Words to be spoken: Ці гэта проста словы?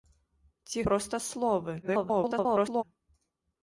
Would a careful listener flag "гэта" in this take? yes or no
yes